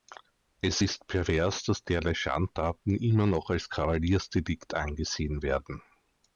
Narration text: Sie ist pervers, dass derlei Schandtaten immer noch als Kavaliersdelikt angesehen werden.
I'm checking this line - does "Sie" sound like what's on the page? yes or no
no